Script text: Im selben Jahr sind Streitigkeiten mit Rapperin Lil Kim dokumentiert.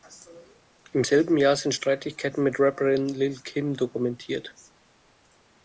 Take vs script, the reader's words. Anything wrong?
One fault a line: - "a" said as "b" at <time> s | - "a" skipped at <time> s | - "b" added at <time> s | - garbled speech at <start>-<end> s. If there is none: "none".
none